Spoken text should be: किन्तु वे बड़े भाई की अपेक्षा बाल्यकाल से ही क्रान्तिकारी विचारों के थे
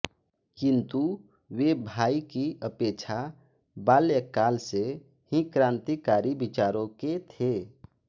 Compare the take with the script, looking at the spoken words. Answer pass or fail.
fail